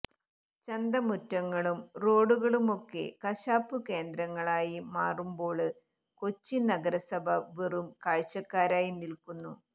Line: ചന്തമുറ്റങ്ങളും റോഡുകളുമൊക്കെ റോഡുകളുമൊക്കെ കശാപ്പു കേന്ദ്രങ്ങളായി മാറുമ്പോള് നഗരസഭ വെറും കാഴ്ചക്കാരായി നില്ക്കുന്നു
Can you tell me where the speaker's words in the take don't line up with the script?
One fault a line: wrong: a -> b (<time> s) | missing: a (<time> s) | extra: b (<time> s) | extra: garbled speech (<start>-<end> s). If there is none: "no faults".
missing: റോഡുകളുമൊക്കെ (3.0 s)
extra: കൊച്ചി (6.2 s)